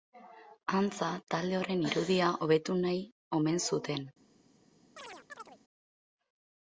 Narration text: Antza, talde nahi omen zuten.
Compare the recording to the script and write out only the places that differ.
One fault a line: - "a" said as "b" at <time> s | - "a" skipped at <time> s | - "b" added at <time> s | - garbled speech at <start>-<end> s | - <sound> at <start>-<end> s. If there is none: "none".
- "horren irudia hobetu" added at 1.6 s
- chirp at 5.0-5.6 s